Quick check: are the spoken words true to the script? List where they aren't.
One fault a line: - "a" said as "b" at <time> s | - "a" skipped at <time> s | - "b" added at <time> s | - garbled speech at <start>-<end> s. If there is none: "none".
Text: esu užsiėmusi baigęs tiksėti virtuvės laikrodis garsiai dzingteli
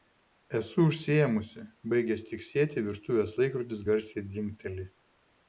none